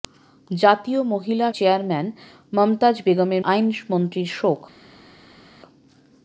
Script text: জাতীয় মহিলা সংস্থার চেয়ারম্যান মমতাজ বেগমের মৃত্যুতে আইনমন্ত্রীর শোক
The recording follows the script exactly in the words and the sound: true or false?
false